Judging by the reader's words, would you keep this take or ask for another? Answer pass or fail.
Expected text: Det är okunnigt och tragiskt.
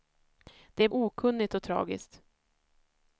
pass